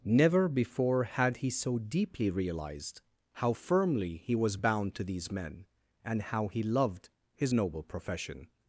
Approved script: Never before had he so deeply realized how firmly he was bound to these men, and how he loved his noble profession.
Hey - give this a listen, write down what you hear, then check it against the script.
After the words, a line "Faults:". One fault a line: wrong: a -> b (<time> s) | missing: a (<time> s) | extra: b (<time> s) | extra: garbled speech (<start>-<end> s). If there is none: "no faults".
Never before had he so deeply realized how firmly he was bound to these men, and how he loved his noble profession.
Faults:
no faults